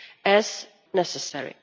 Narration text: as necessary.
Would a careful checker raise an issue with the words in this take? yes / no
no